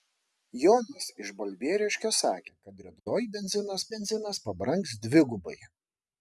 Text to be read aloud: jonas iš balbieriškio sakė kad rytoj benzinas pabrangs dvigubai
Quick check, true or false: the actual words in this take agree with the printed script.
false